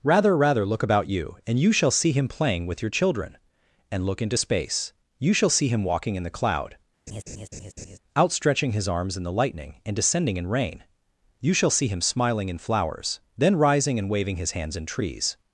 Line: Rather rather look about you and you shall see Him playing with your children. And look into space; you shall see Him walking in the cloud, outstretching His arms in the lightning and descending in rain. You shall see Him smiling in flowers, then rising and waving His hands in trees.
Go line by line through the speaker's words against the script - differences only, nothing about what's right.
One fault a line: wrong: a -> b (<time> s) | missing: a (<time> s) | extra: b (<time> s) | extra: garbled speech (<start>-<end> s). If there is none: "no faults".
no faults